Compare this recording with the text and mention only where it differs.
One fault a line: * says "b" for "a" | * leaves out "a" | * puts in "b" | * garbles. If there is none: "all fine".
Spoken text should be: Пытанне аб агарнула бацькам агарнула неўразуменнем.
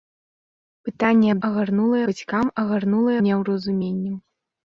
all fine